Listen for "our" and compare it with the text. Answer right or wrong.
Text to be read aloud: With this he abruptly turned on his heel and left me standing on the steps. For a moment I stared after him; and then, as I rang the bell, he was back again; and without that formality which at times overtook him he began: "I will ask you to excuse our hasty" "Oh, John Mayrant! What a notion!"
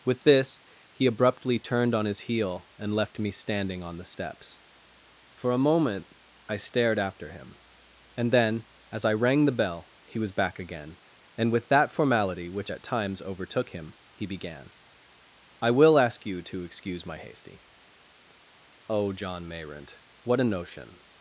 wrong